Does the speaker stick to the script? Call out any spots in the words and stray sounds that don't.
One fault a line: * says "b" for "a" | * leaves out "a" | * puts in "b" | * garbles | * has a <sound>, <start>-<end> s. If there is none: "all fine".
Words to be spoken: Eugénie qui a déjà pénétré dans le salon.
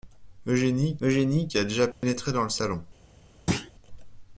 * puts in "eugénie"
* has a dropout, 1.9-2.0 s
* has a thud, 3.5-3.7 s